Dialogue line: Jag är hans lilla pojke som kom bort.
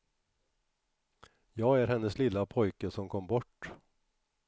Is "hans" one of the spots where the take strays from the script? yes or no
yes